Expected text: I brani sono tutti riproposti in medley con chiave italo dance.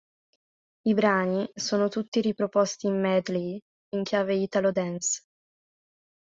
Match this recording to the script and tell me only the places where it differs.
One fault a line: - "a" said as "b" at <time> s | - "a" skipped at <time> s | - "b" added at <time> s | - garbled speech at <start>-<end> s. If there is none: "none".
- "con" said as "in" at 3.9 s